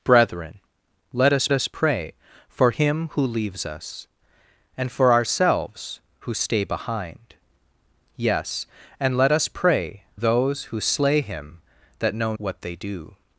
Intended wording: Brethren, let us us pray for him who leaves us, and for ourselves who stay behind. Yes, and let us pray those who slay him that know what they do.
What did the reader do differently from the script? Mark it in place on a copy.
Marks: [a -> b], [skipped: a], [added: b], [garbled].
Brethren, let us us pray for him who leaves us, and for ourselves who stay behind. Yes, and let us pray those who slay him that know what they do.